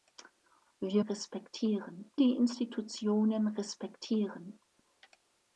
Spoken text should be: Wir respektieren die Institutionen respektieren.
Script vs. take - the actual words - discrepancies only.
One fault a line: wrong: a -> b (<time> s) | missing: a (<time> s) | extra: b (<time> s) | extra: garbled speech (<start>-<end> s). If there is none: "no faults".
no faults